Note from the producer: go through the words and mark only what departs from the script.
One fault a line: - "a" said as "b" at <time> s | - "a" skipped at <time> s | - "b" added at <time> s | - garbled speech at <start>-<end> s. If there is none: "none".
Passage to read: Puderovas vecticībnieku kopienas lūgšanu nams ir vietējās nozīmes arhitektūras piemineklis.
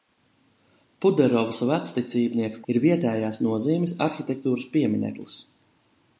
- "kopienas lūgšanu nams" skipped at 2.6 s